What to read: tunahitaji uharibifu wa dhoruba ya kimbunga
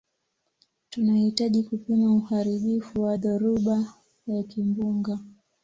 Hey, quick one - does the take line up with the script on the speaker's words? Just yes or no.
no